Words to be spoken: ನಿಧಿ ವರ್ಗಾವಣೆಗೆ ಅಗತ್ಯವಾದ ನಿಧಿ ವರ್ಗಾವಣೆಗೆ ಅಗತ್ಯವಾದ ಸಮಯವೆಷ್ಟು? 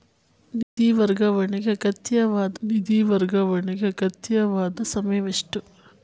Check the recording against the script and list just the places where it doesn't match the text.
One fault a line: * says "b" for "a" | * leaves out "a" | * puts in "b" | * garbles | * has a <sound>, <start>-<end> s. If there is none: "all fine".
* has a dropout, 0.6-0.8 s